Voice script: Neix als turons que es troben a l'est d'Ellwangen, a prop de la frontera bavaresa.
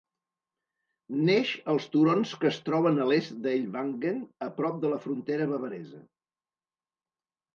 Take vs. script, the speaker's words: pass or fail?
pass